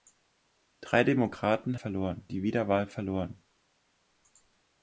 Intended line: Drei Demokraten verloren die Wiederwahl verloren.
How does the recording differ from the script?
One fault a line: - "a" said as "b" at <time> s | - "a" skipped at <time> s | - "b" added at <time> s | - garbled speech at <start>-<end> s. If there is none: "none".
none